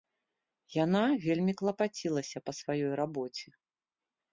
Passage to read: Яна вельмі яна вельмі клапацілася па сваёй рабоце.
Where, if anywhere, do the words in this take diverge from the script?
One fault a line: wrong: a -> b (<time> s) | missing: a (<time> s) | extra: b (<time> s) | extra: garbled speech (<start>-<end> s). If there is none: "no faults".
missing: яна вельмі (1.5 s)